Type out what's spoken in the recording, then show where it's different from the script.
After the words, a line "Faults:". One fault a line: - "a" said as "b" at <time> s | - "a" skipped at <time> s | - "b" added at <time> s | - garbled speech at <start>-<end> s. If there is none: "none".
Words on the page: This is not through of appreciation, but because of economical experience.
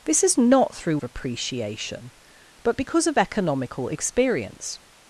This is not through of appreciation, but because of economical experience.
Faults:
none